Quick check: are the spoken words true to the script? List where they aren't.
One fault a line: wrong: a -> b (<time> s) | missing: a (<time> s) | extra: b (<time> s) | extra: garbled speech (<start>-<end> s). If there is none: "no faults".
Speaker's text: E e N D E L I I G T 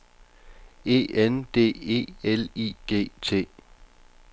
missing: e (1.0 s)
missing: I (2.7 s)